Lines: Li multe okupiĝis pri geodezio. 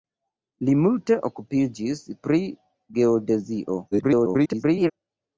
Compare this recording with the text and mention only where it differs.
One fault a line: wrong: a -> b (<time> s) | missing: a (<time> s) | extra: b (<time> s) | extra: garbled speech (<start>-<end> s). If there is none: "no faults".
extra: garbled speech (3.9-4.9 s)